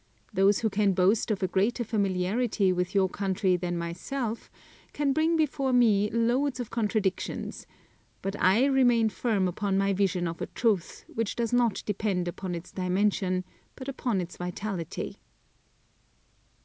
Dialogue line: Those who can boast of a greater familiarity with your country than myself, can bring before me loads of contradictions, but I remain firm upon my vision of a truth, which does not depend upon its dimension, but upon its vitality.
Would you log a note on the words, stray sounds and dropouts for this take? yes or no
no